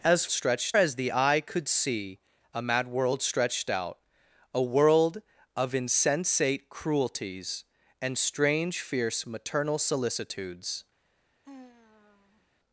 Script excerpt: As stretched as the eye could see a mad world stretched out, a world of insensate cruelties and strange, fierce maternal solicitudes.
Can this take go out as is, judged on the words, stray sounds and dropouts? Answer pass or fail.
fail